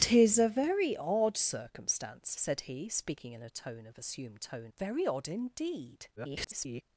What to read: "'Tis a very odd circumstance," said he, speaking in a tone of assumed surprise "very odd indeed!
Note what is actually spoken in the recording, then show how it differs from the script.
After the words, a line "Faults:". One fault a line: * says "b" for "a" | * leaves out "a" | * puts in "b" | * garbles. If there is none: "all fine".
"'Tis a very odd circumstance," said he, speaking in a tone of assumed tone "very odd indeed! [garbled]
Faults:
* says "tone" for "surprise"
* garbles